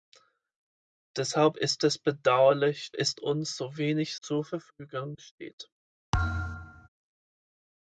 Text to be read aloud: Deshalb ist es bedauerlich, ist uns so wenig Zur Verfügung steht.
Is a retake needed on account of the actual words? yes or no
no